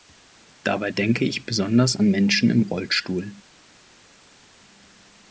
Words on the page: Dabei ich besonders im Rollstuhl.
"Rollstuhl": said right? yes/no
yes